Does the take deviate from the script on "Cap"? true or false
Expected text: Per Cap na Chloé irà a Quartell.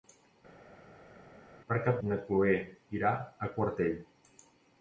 false